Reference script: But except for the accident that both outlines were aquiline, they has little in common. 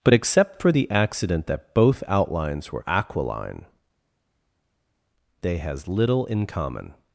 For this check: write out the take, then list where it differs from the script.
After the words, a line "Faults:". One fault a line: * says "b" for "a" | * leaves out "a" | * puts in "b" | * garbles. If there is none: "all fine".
But except for the accident that both outlines were aquiline, they has little in common.
Faults:
all fine